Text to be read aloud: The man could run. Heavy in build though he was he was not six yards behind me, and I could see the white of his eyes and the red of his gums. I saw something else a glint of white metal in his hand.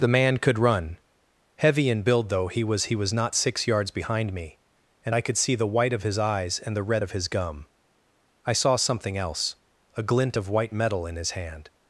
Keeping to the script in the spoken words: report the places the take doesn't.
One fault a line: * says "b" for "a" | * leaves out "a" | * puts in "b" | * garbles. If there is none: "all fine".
* says "gum" for "gums"